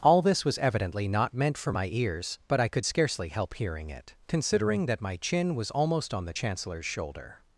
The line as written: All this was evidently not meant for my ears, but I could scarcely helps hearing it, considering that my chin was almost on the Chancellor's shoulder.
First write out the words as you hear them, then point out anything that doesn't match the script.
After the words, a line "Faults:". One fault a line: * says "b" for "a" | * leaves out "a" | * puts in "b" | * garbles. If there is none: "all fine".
All this was evidently not meant for my ears, but I could scarcely help hearing it, considering that my chin was almost on the Chancellor's shoulder.
Faults:
* says "help" for "helps"